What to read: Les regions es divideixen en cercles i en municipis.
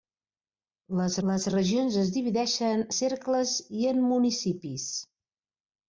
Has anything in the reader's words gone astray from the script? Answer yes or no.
yes